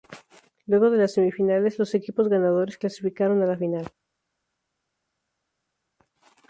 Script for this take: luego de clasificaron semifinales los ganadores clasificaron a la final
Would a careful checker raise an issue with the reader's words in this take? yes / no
yes